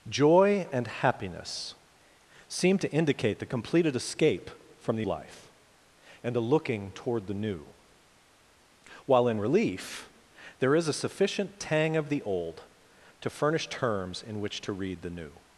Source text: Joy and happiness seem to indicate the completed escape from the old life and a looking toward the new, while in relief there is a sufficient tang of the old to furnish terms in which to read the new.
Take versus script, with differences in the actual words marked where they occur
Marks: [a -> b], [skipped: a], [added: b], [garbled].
Joy and happiness seem to indicate the completed escape from the [skipped: old] life and a looking toward the new, while in relief there is a sufficient tang of the old to furnish terms in which to read the new.